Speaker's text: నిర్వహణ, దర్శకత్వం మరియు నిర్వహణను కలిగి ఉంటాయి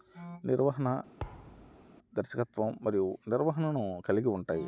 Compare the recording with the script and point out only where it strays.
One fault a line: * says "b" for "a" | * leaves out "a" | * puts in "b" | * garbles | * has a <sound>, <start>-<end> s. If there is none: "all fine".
* has a thud, 1.2-1.9 s